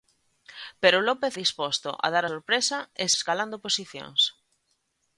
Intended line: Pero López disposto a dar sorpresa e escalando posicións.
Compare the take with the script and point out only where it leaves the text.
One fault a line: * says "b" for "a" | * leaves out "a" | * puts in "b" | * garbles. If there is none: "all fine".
all fine